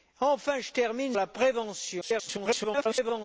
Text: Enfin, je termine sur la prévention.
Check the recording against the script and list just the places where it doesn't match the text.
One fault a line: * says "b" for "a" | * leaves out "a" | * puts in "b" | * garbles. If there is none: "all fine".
* leaves out "sur"
* garbles